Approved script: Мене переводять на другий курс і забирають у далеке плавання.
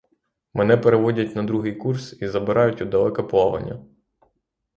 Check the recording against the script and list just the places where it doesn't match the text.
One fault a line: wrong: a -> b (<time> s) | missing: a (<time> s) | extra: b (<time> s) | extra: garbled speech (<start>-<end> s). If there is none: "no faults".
no faults